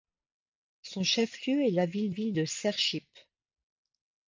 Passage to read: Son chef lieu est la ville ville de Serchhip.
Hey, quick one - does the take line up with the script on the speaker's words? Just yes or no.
yes